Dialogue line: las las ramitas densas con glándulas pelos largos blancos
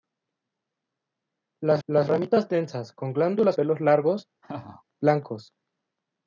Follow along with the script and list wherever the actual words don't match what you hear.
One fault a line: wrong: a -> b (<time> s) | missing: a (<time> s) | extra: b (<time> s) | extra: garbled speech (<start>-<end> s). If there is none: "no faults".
no faults